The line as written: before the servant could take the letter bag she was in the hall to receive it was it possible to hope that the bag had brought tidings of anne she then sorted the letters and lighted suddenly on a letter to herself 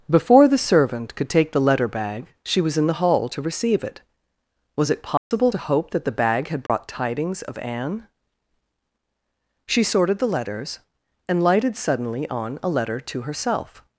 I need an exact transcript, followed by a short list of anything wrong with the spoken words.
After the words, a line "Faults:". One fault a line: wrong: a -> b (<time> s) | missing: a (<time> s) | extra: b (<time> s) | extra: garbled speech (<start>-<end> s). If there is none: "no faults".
before the servant could take the letter bag she was in the hall to receive it was it possible to hope that the bag had brought tidings of anne she sorted the letters and lighted suddenly on a letter to herself
Faults:
missing: then (9.8 s)